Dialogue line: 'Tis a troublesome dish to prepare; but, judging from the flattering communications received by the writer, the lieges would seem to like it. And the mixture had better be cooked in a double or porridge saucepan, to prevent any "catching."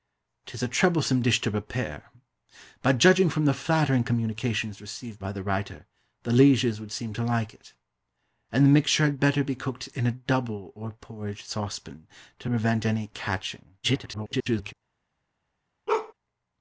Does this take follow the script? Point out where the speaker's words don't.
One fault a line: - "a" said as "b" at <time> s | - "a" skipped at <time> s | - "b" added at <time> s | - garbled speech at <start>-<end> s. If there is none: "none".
- garbled speech at 13.8-14.7 s